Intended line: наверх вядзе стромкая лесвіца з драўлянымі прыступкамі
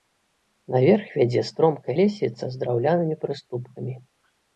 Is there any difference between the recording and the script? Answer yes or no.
no